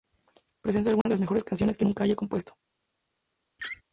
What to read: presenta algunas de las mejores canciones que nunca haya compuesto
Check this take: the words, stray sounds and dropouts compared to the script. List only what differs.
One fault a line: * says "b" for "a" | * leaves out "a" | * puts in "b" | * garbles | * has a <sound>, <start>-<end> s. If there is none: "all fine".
* has a dropout, 1.0-1.1 s
* has a laugh, 3.6-3.8 s